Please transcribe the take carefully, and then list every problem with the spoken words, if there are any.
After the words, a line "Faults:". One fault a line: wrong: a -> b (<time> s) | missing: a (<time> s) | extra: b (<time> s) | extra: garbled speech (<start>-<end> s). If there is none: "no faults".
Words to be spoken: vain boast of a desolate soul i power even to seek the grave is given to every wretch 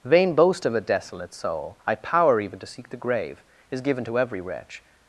vain boast of a desolate soul i power even to seek the grave is given to every wretch
Faults:
no faults